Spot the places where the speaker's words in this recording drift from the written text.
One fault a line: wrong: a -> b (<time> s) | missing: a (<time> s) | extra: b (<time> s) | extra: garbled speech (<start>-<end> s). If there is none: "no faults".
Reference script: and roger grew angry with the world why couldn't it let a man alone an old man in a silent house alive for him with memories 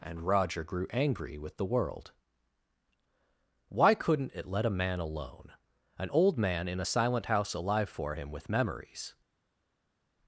no faults